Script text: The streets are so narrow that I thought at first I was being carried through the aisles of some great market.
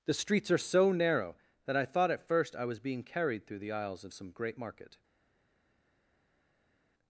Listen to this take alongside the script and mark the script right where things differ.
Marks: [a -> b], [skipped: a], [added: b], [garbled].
The streets are so narrow that I thought at first I was being carried through the aisles of some great market.